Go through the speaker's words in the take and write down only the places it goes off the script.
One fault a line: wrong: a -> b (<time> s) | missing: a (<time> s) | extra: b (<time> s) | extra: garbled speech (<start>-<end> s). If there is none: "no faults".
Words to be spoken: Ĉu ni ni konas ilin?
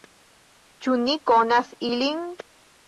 missing: ni (1.2 s)